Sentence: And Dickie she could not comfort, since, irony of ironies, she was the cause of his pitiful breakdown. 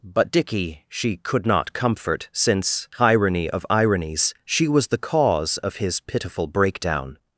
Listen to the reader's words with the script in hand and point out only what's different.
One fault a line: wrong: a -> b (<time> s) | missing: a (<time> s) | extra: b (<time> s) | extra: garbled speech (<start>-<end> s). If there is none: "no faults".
wrong: And -> But (0.0 s)